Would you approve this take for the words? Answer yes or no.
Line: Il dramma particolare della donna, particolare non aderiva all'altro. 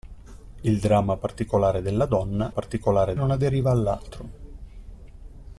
yes